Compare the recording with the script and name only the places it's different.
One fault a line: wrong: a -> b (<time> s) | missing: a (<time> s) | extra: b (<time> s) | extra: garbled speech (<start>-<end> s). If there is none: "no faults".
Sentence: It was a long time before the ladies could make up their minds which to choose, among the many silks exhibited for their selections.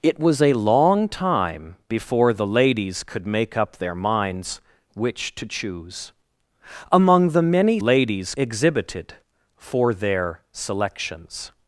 wrong: silks -> ladies (7.8 s)